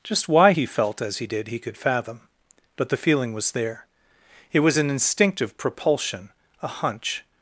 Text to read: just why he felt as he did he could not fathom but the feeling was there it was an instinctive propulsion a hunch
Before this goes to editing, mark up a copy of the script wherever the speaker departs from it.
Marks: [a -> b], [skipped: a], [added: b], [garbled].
just why he felt as he did he could [skipped: not] fathom but the feeling was there it was an instinctive propulsion a hunch